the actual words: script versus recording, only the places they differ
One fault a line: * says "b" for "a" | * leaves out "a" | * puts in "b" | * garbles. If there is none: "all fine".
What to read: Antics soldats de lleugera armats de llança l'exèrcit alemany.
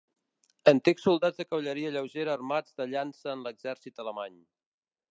* puts in "cavalleria"
* puts in "en"